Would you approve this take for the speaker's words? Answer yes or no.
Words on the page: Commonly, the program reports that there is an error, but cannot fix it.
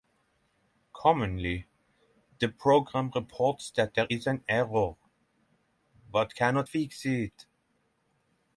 yes